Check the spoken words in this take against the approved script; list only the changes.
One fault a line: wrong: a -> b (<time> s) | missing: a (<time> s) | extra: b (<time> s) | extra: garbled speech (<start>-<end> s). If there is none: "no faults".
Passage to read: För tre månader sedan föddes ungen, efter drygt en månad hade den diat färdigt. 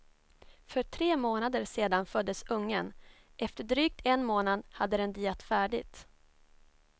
no faults